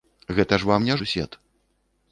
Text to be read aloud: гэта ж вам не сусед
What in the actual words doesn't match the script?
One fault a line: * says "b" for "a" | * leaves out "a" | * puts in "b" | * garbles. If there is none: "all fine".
all fine